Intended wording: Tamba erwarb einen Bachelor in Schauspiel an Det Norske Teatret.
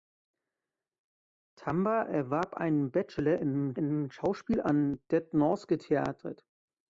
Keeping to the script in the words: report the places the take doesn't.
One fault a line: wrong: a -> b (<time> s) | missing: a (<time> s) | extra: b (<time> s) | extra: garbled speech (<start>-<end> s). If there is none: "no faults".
extra: in (3.7 s)